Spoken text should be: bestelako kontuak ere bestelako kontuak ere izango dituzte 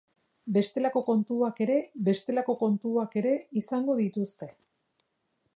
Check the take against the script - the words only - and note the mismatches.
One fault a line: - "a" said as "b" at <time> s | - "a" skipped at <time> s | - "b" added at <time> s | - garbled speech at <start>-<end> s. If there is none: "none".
none